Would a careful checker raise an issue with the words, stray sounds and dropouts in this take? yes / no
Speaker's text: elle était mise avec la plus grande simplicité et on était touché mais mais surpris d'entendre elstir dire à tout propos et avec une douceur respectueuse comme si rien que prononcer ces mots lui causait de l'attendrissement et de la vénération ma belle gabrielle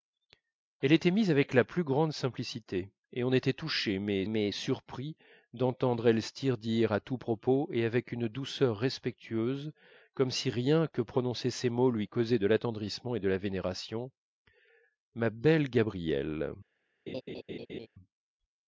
yes